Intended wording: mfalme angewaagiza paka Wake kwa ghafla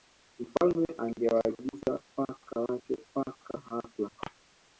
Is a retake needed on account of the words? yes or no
yes